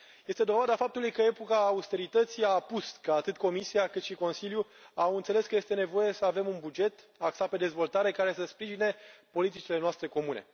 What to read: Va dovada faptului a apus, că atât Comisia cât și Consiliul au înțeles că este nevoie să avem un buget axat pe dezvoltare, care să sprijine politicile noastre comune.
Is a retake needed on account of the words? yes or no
yes